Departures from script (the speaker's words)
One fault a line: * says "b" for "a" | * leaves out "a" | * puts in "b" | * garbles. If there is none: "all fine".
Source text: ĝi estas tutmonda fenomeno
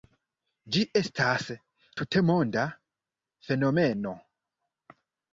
all fine